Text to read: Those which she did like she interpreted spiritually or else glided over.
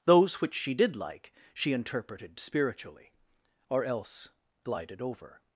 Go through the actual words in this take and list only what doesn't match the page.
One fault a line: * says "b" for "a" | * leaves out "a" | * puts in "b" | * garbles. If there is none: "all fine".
all fine